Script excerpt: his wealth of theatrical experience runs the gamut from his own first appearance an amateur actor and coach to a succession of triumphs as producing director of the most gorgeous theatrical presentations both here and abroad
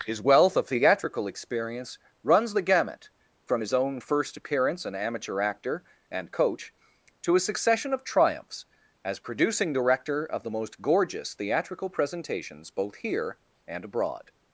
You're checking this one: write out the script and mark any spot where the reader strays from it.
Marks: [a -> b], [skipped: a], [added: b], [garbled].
his wealth of theatrical experience runs the gamut from his own first appearance an amateur actor and coach to a succession of triumphs as producing director of the most gorgeous theatrical presentations both here and abroad